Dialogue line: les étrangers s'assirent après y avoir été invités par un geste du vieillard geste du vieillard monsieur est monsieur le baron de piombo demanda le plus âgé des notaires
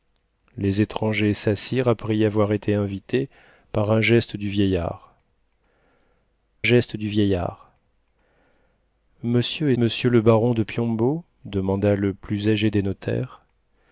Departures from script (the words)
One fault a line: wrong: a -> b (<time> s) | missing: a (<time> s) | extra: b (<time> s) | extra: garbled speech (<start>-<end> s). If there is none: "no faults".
no faults